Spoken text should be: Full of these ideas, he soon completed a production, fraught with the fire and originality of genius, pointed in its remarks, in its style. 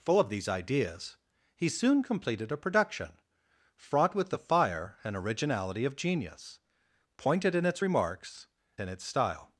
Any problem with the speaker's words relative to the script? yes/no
no